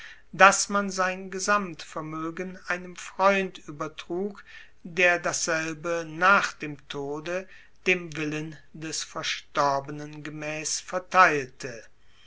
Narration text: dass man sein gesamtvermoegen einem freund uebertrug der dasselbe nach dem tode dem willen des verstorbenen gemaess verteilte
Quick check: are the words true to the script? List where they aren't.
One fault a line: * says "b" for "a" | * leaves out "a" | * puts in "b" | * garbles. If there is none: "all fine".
all fine